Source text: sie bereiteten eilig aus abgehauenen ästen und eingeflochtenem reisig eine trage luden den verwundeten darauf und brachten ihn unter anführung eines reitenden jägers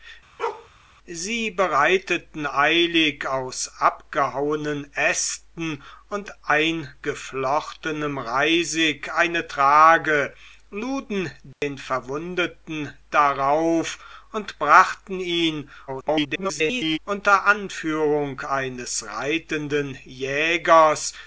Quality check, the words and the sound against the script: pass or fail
fail